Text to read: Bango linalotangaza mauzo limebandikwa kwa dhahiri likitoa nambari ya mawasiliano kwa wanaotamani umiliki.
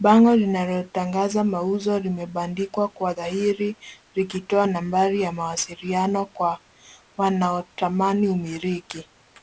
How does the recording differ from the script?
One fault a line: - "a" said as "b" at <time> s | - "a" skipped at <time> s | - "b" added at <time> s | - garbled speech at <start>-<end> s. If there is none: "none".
none